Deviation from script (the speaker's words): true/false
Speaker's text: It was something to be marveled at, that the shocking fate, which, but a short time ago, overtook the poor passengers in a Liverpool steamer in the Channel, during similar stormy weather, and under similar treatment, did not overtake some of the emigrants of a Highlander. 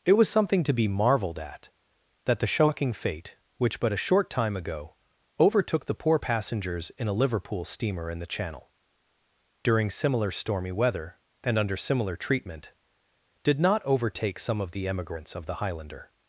true